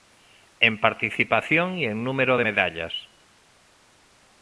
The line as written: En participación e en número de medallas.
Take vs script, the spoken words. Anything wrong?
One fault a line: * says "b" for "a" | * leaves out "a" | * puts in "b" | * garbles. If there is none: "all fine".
all fine